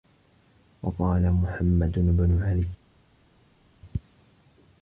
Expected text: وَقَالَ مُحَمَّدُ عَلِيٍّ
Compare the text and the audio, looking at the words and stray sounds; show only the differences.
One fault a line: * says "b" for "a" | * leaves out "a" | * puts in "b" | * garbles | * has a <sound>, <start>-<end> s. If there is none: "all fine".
* puts in "بْنُ"